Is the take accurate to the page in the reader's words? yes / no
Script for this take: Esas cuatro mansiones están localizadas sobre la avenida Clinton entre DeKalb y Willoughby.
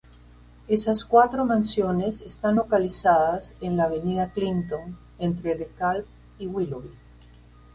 no